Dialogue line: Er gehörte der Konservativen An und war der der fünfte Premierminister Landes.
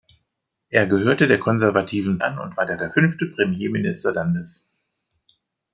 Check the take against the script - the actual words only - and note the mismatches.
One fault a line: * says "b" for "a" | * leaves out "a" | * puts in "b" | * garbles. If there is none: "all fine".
all fine